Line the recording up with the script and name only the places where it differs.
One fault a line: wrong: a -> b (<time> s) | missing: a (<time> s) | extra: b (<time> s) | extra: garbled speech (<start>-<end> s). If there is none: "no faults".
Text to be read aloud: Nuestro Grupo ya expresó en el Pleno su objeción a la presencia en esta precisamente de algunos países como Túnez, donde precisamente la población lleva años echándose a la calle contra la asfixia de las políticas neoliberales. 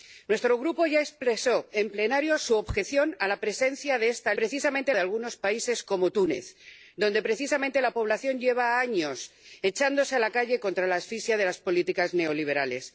no faults